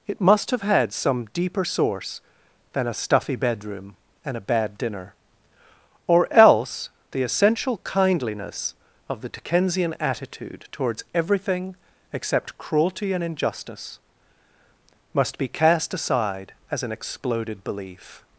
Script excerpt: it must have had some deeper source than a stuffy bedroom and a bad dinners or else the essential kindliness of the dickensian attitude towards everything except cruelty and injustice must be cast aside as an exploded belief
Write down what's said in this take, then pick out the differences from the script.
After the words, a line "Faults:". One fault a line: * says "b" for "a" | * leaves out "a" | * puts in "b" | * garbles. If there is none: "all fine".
it must have had some deeper source than a stuffy bedroom and a bad dinner or else the essential kindliness of the dickensian attitude towards everything except cruelty and injustice must be cast aside as an exploded belief
Faults:
* says "dinner" for "dinners"